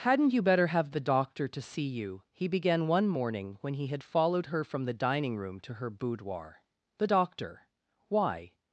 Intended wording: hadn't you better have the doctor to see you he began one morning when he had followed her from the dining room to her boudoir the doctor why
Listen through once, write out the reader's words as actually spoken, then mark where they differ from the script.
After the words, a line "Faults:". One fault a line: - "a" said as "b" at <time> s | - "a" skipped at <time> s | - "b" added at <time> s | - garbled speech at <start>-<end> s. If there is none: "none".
hadn't you better have the doctor to see you he began one morning when he had followed her from the dining room to her boudoir the doctor why
Faults:
none